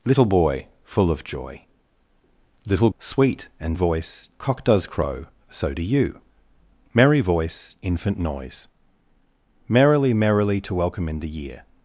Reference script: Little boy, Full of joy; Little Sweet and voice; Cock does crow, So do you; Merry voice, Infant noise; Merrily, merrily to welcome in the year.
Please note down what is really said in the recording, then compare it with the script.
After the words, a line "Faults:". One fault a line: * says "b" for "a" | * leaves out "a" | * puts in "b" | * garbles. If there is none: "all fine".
Little boy, Full of joy; Little Sweet and voice; Cock does crow, So do you; Merry voice, Infant noise; Merrily, merrily to welcome in the year.
Faults:
all fine